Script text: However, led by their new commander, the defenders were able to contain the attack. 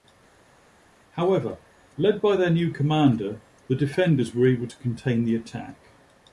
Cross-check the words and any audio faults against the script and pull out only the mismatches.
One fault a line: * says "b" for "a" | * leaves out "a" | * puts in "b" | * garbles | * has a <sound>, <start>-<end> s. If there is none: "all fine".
all fine